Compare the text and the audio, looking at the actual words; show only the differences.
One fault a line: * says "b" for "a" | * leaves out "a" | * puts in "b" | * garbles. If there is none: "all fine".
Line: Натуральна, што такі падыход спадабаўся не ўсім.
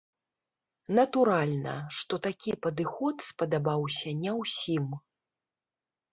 all fine